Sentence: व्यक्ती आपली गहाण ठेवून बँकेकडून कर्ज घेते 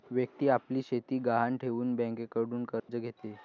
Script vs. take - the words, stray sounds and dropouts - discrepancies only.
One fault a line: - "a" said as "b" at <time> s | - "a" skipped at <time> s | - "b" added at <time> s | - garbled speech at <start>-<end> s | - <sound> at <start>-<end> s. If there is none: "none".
- "शेती" added at 0.8 s
- dropout at 2.8-2.9 s